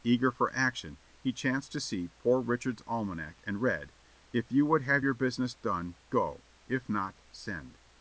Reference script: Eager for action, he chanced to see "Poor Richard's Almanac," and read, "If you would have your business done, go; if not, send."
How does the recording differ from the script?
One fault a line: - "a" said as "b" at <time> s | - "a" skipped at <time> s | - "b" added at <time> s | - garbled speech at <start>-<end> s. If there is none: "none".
none